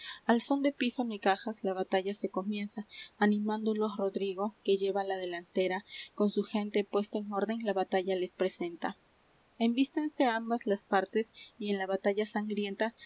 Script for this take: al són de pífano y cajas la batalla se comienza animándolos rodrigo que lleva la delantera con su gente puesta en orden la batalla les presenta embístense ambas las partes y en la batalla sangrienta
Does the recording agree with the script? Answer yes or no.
yes